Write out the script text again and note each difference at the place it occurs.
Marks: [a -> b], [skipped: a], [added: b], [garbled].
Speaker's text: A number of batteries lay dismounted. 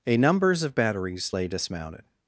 A [number -> numbers] of batteries lay dismounted.